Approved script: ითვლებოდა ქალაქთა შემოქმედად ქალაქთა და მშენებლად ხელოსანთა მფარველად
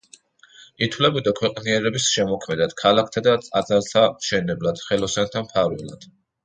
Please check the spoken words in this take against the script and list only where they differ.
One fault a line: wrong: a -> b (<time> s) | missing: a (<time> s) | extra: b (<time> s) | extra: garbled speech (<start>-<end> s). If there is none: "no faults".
wrong: ქალაქთა -> ქვეყნიერების (1.4 s)
extra: ტაძართა (3.5 s)